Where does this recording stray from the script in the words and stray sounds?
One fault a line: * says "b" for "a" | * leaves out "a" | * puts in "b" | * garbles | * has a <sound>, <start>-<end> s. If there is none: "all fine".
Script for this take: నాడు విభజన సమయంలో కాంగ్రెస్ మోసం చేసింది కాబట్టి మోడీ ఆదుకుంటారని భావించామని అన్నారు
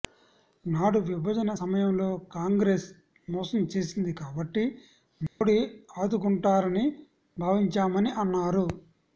* has a dropout, 5.3-5.4 s